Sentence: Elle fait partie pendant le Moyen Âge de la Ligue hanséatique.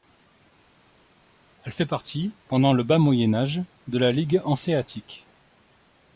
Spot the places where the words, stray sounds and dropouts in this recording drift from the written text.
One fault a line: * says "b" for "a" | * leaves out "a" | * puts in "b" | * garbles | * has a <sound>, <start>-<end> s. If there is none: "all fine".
* puts in "Bas"